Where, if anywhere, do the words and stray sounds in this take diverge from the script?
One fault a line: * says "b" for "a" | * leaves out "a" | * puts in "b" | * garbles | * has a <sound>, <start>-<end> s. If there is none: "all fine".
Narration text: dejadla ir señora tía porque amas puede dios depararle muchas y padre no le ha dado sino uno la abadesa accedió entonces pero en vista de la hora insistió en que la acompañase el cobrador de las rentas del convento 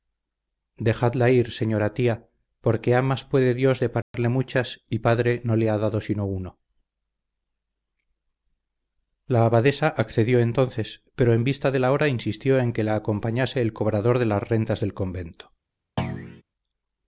* has a dropout, 4.0-4.1 s
* has a thud, 16.0-16.4 s